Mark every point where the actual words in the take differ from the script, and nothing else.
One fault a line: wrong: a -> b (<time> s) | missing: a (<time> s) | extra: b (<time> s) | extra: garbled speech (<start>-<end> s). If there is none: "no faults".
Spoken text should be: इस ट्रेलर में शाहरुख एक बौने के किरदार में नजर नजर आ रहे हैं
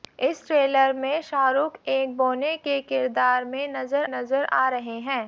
no faults